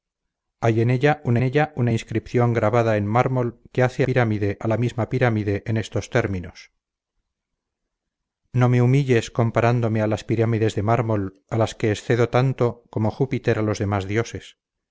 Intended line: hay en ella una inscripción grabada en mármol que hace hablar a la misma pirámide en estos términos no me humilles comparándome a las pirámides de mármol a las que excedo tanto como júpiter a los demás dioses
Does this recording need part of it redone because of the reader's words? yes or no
yes